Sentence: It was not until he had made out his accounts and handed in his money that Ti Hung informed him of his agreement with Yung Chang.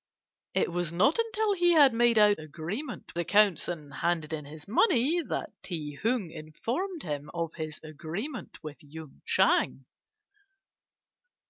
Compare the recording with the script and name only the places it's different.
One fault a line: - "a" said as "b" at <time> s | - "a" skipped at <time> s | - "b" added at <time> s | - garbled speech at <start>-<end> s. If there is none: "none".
- "his" said as "agreement" at 2.4 s